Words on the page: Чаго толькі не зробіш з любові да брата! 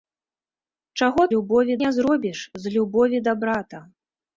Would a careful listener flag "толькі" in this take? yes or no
yes